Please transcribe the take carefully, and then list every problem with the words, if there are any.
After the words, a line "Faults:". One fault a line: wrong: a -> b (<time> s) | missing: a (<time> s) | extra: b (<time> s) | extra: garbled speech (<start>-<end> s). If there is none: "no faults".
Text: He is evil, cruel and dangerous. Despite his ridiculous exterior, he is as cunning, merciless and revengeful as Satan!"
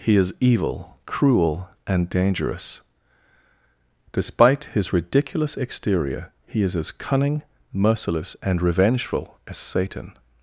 He is evil, cruel and dangerous. Despite his ridiculous exterior, he is as cunning, merciless and revengeful as Satan!"
Faults:
no faults